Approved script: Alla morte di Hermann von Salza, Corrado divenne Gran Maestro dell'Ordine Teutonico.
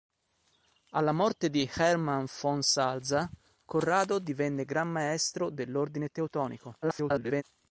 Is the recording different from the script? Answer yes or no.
yes